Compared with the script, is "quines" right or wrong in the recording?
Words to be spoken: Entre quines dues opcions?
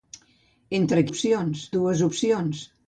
wrong